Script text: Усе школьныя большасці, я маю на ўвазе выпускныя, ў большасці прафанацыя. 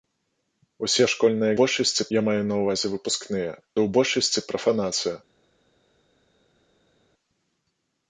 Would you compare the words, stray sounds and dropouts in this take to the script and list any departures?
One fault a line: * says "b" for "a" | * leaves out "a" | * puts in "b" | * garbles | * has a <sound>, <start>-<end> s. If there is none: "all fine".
all fine